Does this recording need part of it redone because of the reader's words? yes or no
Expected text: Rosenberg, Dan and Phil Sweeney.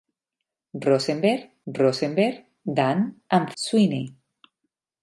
yes